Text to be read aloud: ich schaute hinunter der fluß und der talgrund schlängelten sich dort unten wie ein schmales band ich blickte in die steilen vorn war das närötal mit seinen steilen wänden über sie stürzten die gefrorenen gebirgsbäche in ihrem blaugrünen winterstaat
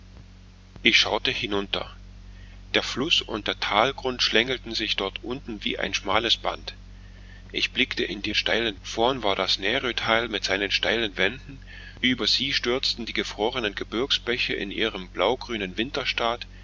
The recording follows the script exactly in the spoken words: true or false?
true